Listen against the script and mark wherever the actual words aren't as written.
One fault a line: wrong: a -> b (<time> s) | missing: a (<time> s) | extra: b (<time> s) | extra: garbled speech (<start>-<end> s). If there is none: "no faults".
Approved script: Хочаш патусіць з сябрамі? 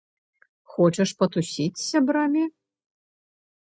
no faults